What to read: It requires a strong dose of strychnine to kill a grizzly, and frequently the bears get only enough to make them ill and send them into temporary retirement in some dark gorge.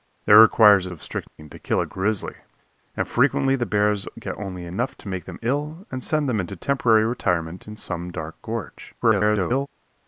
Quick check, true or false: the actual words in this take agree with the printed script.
false